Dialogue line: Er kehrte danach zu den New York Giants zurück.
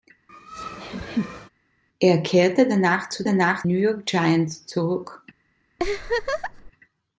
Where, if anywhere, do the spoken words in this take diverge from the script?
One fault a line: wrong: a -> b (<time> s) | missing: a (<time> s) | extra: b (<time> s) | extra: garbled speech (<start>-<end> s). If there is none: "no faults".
wrong: den -> danach (3.2 s)